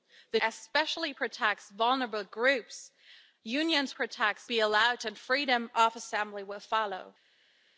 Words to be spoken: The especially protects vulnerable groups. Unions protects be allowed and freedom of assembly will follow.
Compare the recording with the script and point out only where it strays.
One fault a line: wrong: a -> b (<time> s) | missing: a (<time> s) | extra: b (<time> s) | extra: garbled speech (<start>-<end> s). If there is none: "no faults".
no faults